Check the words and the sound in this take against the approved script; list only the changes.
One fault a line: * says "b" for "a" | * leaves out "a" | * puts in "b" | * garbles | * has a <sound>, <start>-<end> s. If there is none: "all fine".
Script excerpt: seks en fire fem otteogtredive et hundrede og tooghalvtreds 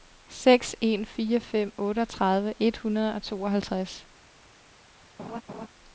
* has a laugh, 5.2-5.7 s